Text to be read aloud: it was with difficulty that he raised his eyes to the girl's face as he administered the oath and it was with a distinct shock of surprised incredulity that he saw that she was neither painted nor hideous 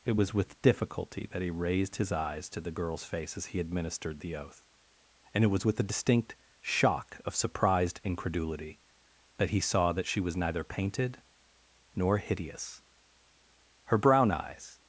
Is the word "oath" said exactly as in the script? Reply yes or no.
yes